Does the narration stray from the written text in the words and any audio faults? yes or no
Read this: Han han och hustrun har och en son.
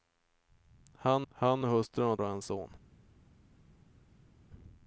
no